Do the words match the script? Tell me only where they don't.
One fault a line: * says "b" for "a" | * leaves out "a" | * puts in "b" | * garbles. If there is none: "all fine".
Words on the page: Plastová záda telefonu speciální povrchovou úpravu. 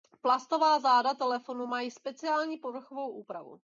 * puts in "mají"